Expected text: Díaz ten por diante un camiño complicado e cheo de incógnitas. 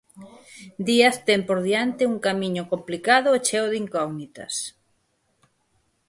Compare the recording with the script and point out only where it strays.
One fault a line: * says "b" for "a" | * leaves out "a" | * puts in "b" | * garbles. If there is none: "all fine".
all fine